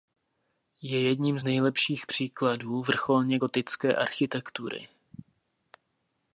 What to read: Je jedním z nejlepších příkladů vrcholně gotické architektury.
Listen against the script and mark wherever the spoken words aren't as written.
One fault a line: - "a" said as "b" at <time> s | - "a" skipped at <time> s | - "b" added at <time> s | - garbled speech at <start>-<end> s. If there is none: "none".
none